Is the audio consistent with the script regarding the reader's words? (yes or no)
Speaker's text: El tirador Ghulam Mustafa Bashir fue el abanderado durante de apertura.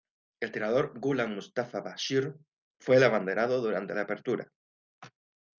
yes